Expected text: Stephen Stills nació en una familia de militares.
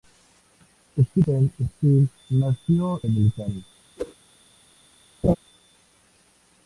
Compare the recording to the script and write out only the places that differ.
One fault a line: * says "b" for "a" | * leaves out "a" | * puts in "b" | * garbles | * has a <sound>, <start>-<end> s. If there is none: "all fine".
* leaves out "en una familia"
* has a whoosh, 4.0-4.1 s
* has a laugh, 5.2-5.4 s